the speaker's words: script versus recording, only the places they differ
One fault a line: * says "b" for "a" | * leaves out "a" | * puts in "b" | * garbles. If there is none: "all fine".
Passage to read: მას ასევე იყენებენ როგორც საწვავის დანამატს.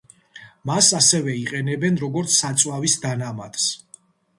all fine